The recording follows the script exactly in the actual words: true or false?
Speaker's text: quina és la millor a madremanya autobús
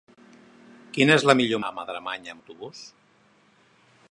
true